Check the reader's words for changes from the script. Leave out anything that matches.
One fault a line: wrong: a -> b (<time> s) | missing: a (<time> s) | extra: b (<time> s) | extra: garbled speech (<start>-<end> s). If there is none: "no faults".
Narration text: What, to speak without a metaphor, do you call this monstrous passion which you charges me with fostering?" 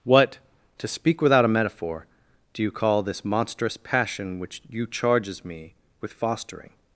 no faults